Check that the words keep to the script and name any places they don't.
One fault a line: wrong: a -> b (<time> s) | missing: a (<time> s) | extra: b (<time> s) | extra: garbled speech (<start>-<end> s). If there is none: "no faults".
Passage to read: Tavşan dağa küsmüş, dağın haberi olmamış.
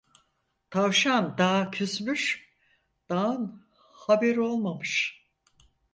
no faults